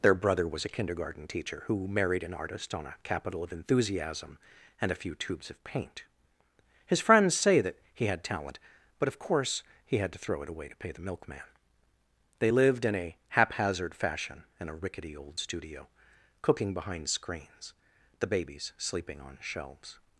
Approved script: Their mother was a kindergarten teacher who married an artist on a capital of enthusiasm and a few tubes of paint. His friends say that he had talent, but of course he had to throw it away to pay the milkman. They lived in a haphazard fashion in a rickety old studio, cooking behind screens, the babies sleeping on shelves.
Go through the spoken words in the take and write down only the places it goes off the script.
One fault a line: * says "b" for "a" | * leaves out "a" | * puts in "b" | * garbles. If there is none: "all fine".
* says "brother" for "mother"